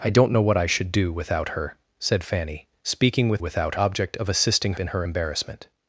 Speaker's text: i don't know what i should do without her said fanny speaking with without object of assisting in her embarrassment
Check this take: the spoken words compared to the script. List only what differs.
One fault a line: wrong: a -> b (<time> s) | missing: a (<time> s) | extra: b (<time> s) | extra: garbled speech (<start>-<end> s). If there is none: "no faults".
no faults